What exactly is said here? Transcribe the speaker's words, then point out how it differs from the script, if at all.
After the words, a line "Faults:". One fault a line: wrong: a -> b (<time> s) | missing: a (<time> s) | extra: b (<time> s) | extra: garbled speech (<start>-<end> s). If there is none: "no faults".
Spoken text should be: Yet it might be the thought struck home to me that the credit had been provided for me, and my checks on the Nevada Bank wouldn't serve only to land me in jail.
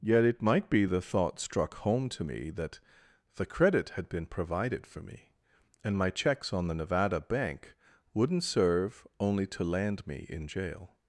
Yet it might be the thought struck home to me that the credit had been provided for me, and my checks on the Nevada Bank wouldn't serve only to land me in jail.
Faults:
no faults